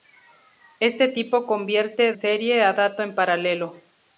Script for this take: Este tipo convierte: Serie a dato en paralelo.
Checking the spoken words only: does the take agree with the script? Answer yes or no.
yes